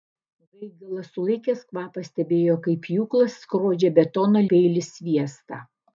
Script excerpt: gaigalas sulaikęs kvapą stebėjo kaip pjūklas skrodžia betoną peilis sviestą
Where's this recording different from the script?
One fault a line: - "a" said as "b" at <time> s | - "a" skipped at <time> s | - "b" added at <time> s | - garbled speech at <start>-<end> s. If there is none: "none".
none